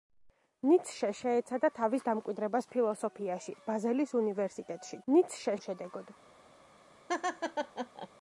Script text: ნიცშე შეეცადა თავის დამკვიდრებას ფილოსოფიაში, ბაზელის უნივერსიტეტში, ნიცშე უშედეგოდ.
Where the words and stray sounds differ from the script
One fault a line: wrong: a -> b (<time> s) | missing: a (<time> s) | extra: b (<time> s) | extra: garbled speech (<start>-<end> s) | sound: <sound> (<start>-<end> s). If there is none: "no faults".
sound: laugh (7.1-8.1 s)